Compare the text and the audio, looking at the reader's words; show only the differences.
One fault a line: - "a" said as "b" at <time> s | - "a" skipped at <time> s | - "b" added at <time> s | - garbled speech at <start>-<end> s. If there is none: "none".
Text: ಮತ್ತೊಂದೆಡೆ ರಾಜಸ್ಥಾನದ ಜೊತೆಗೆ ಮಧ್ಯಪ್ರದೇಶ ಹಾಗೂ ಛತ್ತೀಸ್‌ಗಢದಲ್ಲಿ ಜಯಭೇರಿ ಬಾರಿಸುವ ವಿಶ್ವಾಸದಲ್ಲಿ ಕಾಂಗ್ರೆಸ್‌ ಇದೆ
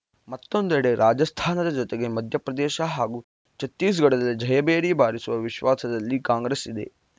none